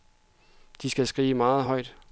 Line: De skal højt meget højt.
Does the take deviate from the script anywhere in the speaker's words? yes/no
yes